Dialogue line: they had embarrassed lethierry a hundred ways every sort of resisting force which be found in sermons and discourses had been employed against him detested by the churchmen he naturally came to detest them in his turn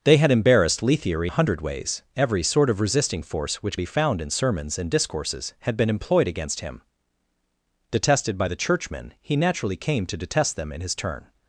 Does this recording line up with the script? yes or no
yes